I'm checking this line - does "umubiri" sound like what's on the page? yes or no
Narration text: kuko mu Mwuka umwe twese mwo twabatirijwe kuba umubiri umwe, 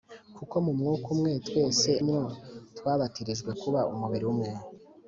yes